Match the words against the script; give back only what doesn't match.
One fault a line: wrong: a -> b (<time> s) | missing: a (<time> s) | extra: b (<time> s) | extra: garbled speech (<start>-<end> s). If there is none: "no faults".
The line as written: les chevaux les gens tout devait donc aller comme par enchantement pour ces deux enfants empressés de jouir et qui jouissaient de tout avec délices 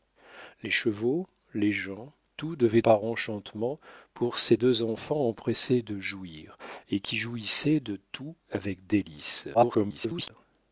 missing: donc aller comme (2.8 s)
extra: garbled speech (9.5-10.3 s)